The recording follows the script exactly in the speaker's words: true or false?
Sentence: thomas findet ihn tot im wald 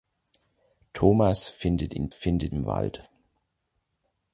false